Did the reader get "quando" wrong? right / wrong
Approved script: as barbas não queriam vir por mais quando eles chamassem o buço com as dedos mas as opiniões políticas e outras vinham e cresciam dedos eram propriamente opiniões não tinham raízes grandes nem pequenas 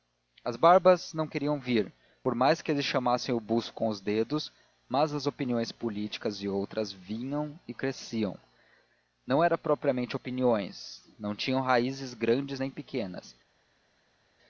wrong